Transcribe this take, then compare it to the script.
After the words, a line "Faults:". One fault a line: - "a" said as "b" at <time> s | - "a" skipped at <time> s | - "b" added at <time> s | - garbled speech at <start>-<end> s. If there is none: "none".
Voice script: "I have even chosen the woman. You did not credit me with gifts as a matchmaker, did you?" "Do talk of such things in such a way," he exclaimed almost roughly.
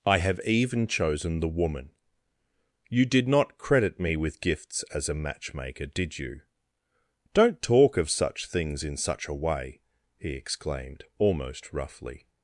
"I have even chosen the woman. You did not credit me with gifts as a matchmaker, did you?" "Don't talk of such things in such a way," he exclaimed almost roughly.
Faults:
- "Do" said as "Don't" at 7.3 s